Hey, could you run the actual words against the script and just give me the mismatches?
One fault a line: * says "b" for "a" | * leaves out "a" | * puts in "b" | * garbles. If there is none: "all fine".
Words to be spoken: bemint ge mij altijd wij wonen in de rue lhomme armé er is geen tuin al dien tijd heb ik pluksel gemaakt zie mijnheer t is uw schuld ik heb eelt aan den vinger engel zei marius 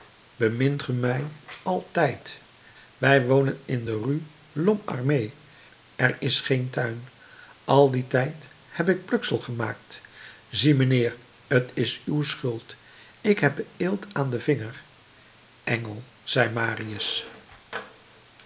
all fine